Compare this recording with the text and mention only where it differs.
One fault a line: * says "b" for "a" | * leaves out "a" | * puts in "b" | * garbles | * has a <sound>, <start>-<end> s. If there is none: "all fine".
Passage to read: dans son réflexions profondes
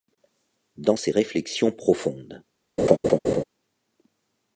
* says "ses" for "son"
* has a laugh, 2.8-3.4 s